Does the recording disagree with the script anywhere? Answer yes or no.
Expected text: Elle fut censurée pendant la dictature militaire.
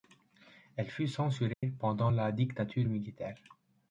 no